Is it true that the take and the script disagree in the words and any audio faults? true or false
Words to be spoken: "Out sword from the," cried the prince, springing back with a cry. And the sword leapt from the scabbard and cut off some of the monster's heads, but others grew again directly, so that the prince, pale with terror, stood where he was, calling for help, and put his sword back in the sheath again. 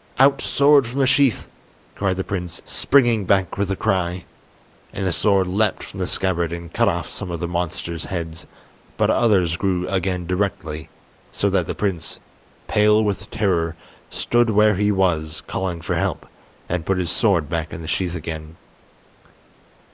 true